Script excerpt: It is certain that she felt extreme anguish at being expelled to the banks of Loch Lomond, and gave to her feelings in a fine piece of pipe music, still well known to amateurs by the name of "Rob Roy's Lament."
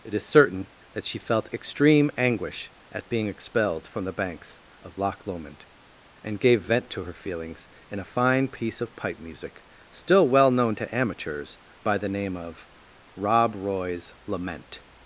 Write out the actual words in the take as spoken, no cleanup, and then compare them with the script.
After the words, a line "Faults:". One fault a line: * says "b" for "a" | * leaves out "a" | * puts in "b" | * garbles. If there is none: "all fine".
It is certain that she felt extreme anguish at being expelled from the banks of Loch Lomond, and gave vent to her feelings in a fine piece of pipe music, still well known to amateurs by the name of "Rob Roy's Lament."
Faults:
* says "from" for "to"
* puts in "vent"